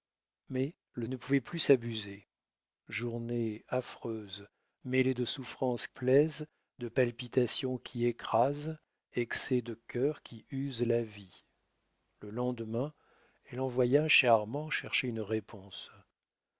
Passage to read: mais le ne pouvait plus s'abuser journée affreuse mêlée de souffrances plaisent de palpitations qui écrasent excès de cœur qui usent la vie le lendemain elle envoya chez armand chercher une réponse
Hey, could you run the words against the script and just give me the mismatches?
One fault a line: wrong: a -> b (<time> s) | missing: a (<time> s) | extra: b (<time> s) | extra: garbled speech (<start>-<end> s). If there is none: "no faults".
no faults